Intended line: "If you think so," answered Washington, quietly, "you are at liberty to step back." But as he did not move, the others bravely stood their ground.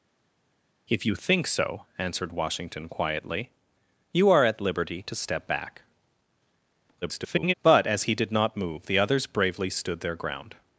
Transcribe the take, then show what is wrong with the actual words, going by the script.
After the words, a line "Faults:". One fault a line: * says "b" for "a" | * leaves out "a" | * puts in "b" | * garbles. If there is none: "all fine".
"If you think so," answered Washington, quietly, "you are at liberty to step back." [garbled] But as he did not move, the others bravely stood their ground.
Faults:
* garbles